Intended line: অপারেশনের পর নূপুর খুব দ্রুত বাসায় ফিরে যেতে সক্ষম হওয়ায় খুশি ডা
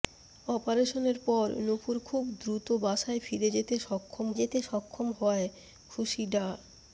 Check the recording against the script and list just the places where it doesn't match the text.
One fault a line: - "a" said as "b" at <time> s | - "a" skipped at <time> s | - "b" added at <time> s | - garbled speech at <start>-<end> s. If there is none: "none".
- "যেতে সক্ষম" added at 4.4 s